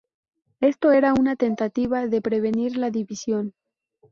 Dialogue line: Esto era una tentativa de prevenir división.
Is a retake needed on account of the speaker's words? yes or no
yes